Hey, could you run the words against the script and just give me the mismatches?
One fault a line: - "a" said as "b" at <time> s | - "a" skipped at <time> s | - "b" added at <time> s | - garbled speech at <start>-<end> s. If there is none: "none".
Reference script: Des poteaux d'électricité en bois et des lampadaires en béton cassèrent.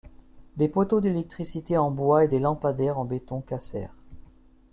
none